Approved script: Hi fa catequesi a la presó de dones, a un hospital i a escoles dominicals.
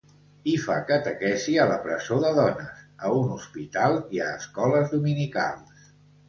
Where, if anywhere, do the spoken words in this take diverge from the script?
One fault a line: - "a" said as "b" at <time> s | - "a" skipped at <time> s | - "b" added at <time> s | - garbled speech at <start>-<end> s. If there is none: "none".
none